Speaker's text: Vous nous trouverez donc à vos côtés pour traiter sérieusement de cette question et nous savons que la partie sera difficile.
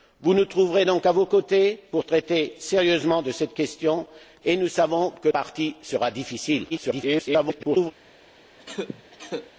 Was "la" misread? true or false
true